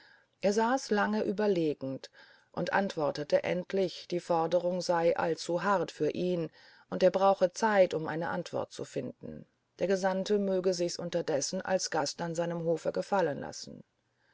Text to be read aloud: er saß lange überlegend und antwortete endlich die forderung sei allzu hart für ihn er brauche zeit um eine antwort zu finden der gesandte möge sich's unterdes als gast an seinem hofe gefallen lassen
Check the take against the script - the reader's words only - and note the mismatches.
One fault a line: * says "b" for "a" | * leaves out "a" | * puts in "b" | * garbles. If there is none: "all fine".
* puts in "und"